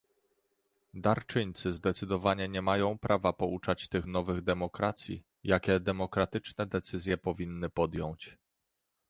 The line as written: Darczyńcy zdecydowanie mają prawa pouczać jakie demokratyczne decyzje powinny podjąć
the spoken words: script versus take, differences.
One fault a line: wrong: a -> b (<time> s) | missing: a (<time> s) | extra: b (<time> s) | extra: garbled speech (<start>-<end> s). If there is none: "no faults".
extra: nie (2.5 s)
extra: tych nowych demokracji (3.9 s)